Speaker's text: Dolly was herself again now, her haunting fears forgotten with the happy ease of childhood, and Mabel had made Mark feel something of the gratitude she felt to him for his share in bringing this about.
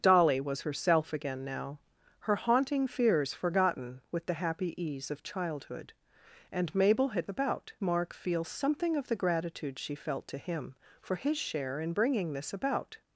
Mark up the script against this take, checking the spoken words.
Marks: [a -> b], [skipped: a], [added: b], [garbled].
Dolly was herself again now, her haunting fears forgotten with the happy ease of childhood, and Mabel had [made -> about] Mark feel something of the gratitude she felt to him for his share in bringing this about.